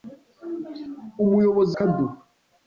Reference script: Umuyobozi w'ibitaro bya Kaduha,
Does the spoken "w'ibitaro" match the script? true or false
false